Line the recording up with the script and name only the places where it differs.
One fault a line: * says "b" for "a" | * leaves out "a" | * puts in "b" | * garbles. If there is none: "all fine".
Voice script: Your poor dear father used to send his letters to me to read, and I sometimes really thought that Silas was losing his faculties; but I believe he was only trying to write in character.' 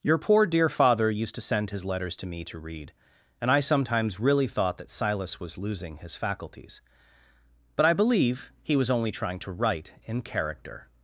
all fine